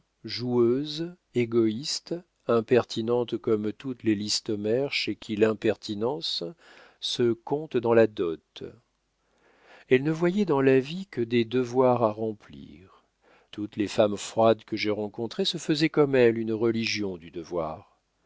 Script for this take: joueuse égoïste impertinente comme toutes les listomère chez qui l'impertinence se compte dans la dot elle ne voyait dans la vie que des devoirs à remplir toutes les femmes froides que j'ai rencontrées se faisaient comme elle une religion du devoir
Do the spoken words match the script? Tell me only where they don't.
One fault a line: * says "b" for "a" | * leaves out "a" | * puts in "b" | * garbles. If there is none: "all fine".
all fine